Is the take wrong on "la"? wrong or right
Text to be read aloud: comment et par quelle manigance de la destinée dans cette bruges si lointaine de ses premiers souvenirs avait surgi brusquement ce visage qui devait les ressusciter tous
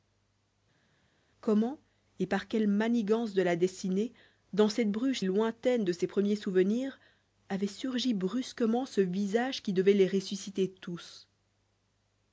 right